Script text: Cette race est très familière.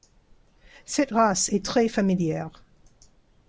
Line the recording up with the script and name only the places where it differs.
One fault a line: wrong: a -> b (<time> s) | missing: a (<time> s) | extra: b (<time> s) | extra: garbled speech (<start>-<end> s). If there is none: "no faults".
no faults